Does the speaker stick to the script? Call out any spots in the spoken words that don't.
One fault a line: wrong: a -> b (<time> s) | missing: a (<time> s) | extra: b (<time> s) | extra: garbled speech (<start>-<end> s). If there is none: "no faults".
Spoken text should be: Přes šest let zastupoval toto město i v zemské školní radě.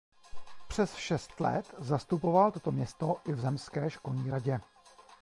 no faults